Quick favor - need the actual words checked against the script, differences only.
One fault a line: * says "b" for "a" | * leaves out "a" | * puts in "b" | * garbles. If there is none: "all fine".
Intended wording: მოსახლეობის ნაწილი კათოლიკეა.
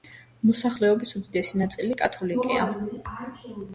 * puts in "უდიდესი"